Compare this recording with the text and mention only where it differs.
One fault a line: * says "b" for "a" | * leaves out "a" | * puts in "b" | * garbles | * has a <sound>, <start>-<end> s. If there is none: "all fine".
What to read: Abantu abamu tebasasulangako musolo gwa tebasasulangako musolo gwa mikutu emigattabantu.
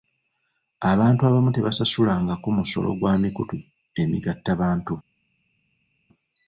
* leaves out "tebasasulangako musolo gwa"